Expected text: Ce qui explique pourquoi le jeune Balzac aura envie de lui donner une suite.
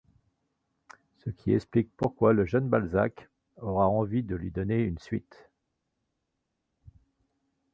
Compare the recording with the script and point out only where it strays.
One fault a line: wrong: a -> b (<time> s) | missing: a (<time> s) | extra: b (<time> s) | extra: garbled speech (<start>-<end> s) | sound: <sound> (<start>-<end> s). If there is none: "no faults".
no faults